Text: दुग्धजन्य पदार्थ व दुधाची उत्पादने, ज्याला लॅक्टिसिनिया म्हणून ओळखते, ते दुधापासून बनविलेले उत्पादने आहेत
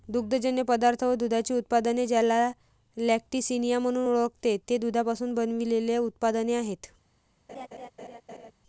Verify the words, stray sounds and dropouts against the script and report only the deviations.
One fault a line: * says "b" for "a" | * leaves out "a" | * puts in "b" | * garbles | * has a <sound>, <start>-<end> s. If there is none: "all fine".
* has a laugh, 7.5-8.5 s